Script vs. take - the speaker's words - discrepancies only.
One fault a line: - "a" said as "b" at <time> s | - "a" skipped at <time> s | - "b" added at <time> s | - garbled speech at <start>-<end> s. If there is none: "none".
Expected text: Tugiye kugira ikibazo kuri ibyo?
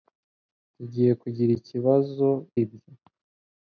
- "kuri" skipped at 2.3 s